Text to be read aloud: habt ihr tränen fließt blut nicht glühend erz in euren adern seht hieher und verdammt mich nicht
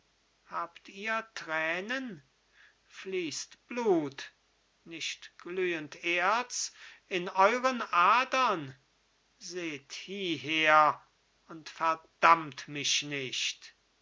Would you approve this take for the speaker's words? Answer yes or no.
yes